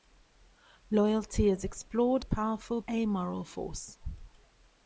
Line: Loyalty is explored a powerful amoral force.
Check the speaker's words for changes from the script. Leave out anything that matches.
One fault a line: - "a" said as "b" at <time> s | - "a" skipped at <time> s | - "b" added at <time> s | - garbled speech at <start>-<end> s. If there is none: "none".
none